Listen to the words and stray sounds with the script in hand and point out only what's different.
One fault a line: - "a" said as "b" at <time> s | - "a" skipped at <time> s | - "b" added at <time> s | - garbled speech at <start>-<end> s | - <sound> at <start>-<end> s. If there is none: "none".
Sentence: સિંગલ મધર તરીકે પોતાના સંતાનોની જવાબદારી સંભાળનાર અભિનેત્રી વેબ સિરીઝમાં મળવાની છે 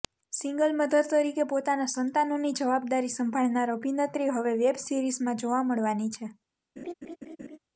- "હવે" added at 4.3 s
- "જોવા" added at 5.4 s
- laugh at 6.8-7.6 s